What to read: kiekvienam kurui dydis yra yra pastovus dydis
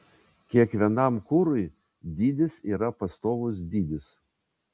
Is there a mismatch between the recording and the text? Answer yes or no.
yes